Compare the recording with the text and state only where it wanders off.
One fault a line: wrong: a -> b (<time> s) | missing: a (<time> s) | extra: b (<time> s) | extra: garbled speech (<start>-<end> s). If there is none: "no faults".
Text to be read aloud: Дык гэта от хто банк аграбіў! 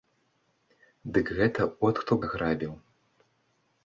missing: банк (2.1 s)